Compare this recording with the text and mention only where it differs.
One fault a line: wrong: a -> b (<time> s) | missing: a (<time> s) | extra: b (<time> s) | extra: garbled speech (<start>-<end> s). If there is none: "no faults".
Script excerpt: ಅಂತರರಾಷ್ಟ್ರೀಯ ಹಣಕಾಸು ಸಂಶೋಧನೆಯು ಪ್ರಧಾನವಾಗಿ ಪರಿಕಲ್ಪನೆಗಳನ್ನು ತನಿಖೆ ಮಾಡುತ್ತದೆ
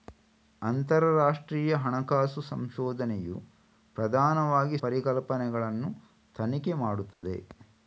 no faults